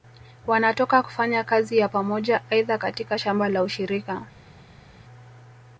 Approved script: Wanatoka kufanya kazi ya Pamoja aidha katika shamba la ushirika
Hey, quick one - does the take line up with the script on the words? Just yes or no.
yes